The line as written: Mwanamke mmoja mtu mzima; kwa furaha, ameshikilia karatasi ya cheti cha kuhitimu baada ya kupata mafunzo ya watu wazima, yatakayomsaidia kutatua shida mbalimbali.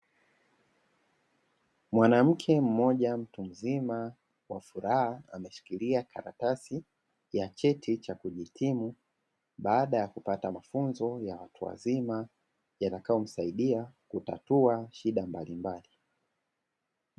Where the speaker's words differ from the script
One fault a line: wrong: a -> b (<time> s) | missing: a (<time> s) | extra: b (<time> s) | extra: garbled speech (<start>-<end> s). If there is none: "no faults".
no faults